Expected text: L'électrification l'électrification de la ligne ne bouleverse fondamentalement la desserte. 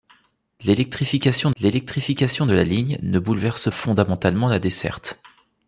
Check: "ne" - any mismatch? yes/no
no